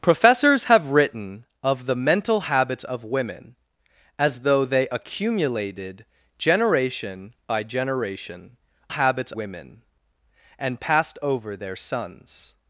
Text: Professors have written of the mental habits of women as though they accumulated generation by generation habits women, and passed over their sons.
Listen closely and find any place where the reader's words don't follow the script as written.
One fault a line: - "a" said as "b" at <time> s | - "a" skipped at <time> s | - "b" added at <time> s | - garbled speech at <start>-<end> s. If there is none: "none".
none